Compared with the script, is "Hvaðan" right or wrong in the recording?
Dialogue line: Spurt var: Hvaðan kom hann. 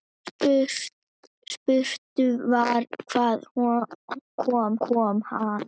right